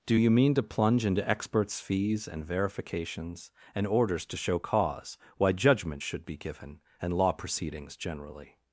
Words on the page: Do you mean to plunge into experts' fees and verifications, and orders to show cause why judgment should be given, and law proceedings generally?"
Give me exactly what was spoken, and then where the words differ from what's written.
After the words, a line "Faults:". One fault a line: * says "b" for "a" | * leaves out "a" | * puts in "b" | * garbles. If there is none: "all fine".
Do you mean to plunge into experts' fees and verifications, and orders to show cause why judgment should be given, and law proceedings generally?"
Faults:
all fine